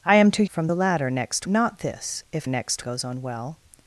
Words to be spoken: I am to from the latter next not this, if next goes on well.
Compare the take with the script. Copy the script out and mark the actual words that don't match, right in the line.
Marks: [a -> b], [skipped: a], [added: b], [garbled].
I am to from the latter next not this, if next goes on well.